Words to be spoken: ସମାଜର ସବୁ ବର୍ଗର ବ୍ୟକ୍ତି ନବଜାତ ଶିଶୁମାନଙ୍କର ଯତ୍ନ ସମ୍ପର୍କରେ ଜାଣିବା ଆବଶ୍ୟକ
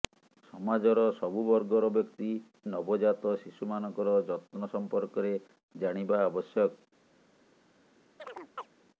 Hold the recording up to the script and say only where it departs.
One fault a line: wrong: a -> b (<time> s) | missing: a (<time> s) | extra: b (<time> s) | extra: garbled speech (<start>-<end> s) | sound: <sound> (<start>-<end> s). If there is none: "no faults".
sound: chirp (8.2-8.7 s)